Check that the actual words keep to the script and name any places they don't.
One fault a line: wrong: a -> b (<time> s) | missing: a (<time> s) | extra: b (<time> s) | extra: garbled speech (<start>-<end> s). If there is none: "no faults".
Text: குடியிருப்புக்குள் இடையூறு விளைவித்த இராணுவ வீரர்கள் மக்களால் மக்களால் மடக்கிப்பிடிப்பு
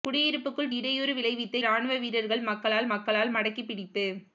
no faults